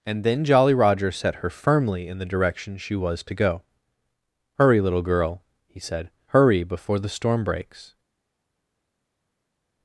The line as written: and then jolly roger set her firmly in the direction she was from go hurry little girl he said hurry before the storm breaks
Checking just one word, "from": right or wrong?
wrong